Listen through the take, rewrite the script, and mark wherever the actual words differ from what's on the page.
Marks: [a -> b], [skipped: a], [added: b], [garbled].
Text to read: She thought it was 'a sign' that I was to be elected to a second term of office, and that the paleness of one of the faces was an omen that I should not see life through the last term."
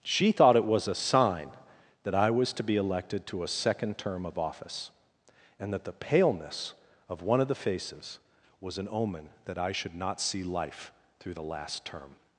She thought it was 'a sign' that I was to be elected to a second term of office, and that the paleness of one of the faces was an omen that I should not see life through the last term."